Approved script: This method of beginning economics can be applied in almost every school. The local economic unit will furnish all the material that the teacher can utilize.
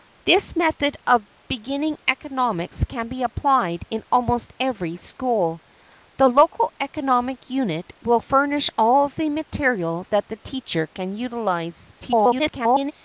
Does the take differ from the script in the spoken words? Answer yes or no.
yes